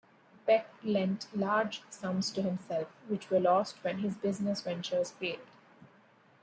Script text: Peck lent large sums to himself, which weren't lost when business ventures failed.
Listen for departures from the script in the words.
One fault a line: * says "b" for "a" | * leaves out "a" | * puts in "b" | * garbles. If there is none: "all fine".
* says "were" for "weren't"
* puts in "his"